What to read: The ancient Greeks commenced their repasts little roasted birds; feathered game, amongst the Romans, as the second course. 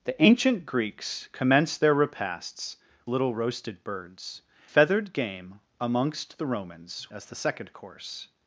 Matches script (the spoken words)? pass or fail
pass